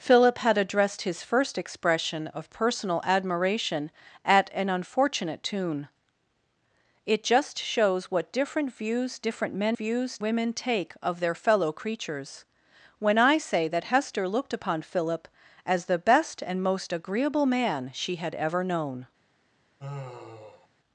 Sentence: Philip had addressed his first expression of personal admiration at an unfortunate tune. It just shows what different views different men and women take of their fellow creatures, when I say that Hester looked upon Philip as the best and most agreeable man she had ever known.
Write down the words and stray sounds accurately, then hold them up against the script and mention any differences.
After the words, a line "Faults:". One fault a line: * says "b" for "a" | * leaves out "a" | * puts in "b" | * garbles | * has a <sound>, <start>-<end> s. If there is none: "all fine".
Philip had addressed his first expression of personal admiration at an unfortunate tune. It just shows what different views different men views women take of their fellow creatures, when I say that Hester looked upon Philip as the best and most agreeable man she had ever known.
Faults:
* says "views" for "and"
* has a sigh, 19.8-20.7 s